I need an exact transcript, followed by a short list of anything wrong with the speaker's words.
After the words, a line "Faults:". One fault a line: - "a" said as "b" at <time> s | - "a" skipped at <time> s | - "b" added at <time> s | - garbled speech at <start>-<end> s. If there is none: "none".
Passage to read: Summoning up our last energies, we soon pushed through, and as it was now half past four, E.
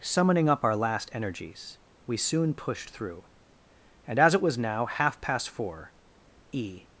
Summoning up our last energies, we soon pushed through, and as it was now half past four, E.
Faults:
none